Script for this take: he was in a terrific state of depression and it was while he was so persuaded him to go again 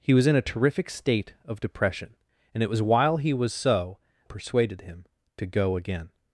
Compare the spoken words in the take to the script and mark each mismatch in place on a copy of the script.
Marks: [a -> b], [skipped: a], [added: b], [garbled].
he was in a terrific state of depression and it was while he was so persuaded him to go again